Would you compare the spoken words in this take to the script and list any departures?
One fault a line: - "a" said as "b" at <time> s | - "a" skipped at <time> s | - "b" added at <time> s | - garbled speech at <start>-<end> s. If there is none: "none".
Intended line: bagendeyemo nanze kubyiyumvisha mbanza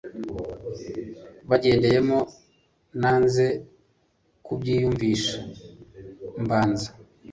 none